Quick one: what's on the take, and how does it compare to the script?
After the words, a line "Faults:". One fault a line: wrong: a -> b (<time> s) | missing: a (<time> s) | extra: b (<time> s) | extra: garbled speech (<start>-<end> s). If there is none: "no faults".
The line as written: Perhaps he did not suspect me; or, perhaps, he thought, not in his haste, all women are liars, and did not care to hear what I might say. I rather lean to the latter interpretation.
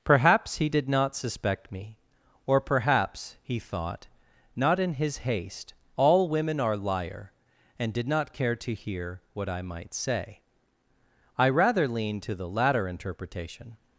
Perhaps he did not suspect me; or, perhaps, he thought, not in his haste, all women are liar, and did not care to hear what I might say. I rather lean to the latter interpretation.
Faults:
wrong: liars -> liar (6.8 s)